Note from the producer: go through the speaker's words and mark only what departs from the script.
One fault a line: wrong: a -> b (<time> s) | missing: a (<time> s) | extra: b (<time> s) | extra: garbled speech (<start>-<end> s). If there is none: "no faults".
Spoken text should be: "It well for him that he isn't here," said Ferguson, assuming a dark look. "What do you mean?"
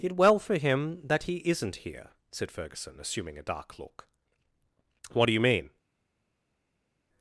no faults